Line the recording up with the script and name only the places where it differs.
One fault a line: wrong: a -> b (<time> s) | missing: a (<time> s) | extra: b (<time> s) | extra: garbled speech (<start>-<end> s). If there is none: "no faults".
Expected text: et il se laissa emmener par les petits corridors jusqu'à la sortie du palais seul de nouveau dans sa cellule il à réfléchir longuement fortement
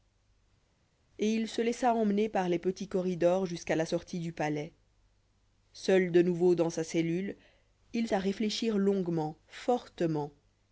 no faults